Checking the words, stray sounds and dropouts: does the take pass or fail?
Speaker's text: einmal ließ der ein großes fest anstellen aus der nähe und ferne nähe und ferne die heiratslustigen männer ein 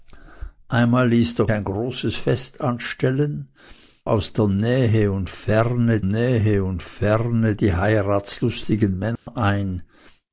fail